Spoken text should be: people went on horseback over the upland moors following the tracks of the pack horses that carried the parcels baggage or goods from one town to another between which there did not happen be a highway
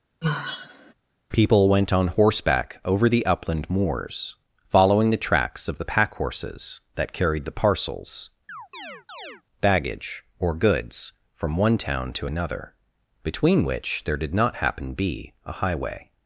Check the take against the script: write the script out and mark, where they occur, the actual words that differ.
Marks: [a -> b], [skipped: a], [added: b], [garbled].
people went on horseback over the upland moors following the tracks of the pack horses that carried the parcels baggage or goods from one town to another between which there did not happen be a highway